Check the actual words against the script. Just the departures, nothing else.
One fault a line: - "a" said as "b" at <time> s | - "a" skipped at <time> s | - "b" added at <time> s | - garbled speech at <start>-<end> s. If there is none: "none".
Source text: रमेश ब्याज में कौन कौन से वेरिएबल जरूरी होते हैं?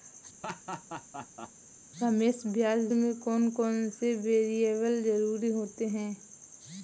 none